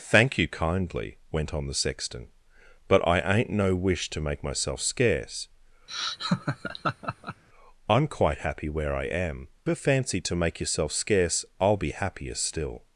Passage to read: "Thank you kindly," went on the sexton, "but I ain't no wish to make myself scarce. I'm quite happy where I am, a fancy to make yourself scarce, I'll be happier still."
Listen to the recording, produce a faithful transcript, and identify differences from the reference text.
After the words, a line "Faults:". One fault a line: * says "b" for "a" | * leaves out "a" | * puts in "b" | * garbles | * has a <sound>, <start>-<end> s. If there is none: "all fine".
"Thank you kindly," went on the sexton, "but I ain't no wish to make myself scarce. I'm quite happy where I am, a fancy to make yourself scarce, I'll be happier still."
Faults:
* has a laugh, 5.9-7.4 s